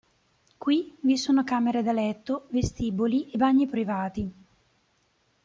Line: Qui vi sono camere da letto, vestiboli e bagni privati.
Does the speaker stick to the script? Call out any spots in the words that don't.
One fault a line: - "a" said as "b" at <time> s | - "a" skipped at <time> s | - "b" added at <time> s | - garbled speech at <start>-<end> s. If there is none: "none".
none